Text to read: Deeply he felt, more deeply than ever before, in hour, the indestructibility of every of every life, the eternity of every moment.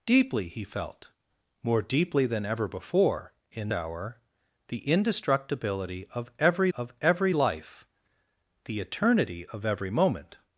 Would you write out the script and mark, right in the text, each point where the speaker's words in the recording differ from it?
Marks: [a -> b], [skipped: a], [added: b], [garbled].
Deeply he felt, more deeply than ever before, in hour, the indestructibility of every of every life, the eternity of every moment.